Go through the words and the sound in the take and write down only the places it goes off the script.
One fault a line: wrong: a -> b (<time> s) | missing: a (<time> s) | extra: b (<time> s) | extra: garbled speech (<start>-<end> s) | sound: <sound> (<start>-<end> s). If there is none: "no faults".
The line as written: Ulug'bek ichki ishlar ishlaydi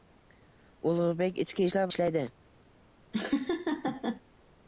sound: laugh (3.1-4.2 s)